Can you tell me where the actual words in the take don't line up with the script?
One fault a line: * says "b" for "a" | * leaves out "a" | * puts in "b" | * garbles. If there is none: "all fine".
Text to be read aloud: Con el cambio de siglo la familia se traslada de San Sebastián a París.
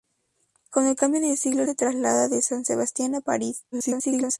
* leaves out "la familia"
* garbles